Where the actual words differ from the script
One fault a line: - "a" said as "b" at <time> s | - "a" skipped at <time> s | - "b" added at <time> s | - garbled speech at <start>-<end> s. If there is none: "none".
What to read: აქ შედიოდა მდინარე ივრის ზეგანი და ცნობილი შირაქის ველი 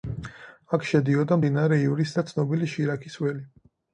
- "ზეგანი" skipped at 2.2 s